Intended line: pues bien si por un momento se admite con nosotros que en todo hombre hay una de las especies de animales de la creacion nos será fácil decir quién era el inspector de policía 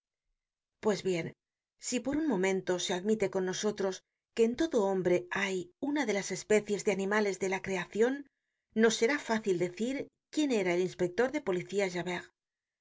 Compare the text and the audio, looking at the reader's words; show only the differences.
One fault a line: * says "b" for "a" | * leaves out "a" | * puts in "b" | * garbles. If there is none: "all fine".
all fine